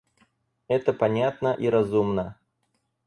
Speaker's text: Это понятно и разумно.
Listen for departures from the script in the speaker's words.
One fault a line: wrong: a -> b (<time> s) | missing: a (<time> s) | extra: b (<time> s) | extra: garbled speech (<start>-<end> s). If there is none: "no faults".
no faults